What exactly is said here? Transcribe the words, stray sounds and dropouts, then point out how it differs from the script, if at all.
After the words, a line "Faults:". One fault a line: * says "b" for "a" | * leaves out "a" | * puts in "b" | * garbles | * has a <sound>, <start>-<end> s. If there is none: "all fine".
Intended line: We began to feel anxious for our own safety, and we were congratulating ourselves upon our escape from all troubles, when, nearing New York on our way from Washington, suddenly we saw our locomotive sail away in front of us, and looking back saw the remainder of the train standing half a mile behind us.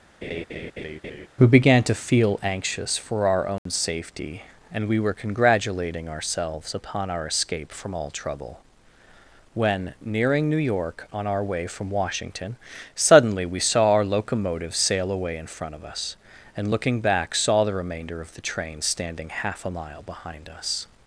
We began to feel anxious for our own safety, and we were congratulating ourselves upon our escape from all trouble, when, nearing New York on our way from Washington, suddenly we saw our locomotive sail away in front of us, and looking back saw the remainder of the train standing half a mile behind us.
Faults:
* has a laugh, 0.2-1.3 s
* has a dropout, 3.6-3.7 s
* says "trouble" for "troubles"